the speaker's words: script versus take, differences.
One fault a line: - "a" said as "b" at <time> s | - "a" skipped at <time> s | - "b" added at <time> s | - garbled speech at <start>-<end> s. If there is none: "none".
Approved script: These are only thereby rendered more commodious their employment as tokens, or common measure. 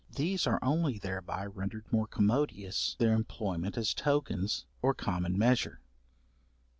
none